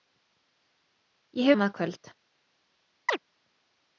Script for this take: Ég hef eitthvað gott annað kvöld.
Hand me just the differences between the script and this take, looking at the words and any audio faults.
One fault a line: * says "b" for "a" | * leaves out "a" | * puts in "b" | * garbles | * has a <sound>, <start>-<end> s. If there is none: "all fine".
* leaves out "hef eitthvað gott"
* has a chirp, 3.1-3.2 s